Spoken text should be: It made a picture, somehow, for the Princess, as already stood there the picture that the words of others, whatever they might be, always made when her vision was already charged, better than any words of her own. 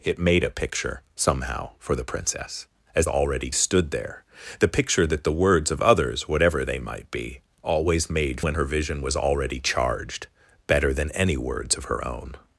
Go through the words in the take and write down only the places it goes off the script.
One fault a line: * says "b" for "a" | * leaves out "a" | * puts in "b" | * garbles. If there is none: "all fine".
all fine